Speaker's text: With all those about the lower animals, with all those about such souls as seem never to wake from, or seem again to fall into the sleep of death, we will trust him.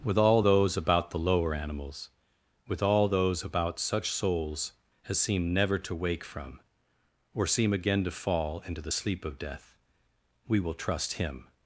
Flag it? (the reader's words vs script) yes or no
no